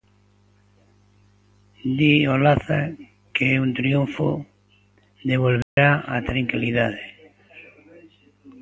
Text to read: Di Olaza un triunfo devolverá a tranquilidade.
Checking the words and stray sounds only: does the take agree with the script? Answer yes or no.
no